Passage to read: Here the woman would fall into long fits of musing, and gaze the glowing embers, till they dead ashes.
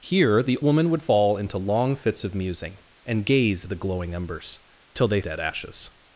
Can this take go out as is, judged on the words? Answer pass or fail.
pass